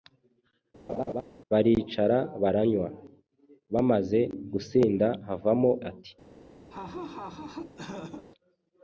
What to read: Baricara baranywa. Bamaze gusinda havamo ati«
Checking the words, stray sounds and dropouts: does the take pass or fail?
fail